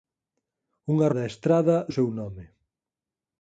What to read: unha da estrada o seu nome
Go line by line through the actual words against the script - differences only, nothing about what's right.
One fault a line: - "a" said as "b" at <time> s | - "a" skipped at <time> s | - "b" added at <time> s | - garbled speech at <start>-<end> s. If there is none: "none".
none